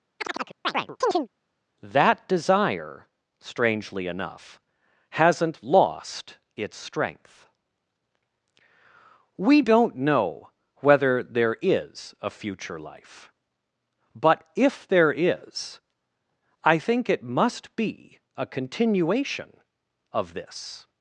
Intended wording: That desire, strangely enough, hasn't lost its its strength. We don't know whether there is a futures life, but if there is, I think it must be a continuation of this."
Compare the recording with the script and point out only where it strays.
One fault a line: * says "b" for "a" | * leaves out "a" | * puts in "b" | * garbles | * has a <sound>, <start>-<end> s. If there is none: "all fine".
* has a chirp, 0.2-1.3 s
* leaves out "its"
* says "future" for "futures"